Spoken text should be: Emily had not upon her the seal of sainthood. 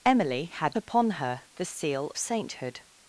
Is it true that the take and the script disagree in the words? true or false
true